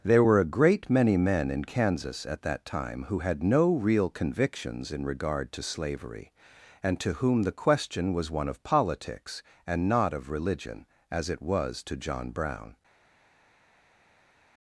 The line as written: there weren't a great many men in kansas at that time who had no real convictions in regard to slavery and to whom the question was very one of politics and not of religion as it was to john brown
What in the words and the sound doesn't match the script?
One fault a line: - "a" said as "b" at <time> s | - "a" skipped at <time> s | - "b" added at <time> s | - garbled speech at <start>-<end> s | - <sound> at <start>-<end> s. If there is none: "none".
- "weren't" said as "were" at 0.2 s
- "very" skipped at 8.3 s